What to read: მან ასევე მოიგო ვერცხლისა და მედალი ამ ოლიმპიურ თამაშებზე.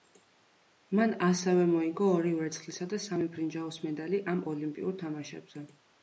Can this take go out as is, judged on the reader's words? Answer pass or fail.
fail